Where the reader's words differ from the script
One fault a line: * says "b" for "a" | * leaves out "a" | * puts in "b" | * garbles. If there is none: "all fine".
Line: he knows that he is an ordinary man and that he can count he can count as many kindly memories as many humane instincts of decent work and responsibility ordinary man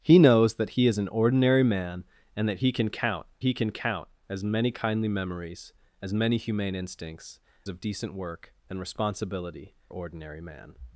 all fine